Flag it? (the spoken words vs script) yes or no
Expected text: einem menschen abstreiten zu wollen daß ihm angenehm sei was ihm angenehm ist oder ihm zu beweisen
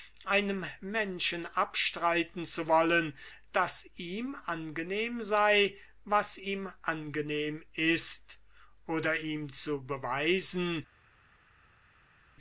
no